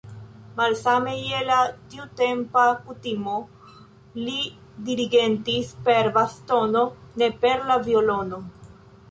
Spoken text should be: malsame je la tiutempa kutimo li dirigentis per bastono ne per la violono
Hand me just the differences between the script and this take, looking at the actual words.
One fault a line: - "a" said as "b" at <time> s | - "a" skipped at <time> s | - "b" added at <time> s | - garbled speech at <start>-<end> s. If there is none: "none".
none